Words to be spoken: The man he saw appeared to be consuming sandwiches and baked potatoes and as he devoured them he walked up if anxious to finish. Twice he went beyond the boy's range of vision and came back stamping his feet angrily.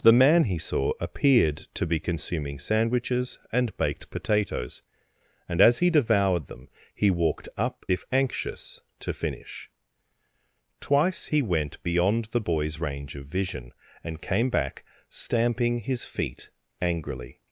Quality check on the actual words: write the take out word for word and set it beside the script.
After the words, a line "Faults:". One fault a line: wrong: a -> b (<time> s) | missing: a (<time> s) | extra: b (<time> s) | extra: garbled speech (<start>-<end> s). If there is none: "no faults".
The man he saw appeared to be consuming sandwiches and baked potatoes and as he devoured them he walked up if anxious to finish. Twice he went beyond the boy's range of vision and came back stamping his feet angrily.
Faults:
no faults